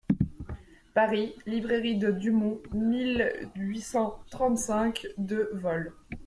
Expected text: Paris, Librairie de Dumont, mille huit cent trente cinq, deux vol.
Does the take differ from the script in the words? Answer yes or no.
no